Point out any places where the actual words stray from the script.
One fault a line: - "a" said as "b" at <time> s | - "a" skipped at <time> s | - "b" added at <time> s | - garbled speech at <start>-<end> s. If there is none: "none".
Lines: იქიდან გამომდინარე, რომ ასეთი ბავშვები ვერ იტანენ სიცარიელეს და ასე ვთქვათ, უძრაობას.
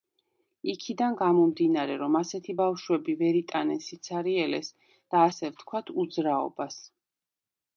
none